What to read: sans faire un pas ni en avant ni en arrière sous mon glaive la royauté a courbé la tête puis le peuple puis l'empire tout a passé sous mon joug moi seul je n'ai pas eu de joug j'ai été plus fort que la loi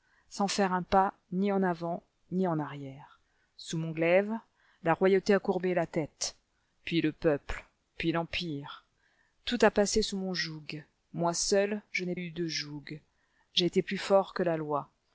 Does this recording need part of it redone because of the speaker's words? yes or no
yes